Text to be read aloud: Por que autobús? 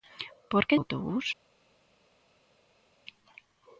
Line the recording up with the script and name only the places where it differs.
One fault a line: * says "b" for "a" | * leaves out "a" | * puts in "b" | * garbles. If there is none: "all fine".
all fine